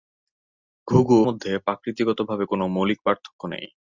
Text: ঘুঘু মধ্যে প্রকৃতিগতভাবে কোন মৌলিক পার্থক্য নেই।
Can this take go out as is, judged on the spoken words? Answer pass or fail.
pass